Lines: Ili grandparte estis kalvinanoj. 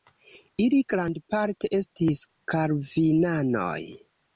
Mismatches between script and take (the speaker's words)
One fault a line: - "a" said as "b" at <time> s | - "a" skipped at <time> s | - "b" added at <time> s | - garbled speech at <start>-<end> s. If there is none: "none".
none